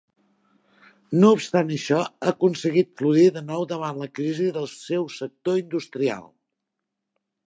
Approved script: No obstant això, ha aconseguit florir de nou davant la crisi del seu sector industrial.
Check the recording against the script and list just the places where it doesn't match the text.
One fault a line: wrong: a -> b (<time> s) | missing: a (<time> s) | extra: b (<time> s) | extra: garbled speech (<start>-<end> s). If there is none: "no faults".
no faults